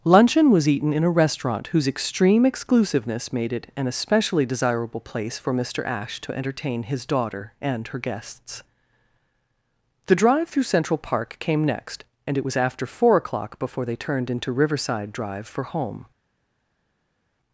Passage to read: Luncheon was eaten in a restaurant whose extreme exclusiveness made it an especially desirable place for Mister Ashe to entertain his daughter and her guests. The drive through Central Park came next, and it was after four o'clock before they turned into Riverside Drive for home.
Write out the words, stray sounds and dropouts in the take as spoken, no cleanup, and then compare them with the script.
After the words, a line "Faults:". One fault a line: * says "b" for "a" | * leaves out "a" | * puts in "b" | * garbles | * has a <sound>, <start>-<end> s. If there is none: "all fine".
Luncheon was eaten in a restaurant whose extreme exclusiveness made it an especially desirable place for Mister Ashe to entertain his daughter and her guests. The drive through Central Park came next, and it was after four o'clock before they turned into Riverside Drive for home.
Faults:
all fine